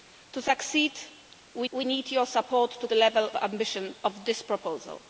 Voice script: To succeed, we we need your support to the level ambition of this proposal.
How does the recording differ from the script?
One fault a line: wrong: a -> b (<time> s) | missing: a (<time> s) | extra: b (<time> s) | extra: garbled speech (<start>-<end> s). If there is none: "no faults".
no faults